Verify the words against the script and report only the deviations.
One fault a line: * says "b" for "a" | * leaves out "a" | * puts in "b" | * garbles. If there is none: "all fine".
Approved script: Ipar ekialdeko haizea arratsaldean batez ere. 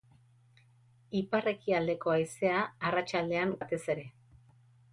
all fine